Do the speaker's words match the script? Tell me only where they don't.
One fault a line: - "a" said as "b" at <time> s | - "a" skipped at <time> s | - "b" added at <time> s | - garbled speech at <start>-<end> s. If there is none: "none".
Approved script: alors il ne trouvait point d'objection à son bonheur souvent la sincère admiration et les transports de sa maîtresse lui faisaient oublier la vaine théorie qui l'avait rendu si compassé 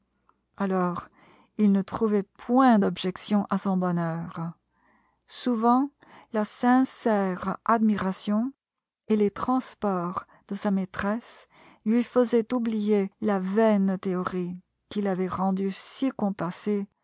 none